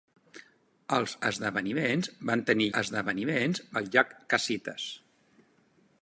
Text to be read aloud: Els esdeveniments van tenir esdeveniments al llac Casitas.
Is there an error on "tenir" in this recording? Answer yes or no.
no